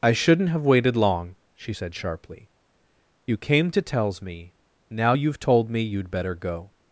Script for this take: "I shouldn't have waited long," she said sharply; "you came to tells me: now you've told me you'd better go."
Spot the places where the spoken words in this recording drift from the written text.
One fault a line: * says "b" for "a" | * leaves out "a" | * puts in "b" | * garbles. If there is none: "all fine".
all fine